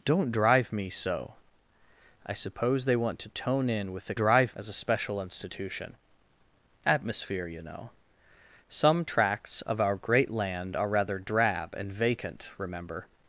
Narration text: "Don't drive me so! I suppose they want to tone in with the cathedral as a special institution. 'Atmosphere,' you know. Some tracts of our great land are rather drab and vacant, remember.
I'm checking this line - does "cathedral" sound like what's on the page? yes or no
no